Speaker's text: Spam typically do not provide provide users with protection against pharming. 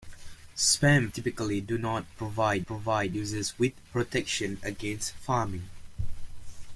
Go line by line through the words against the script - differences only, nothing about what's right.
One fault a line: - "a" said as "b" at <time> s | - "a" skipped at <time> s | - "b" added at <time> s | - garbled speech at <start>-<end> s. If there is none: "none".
none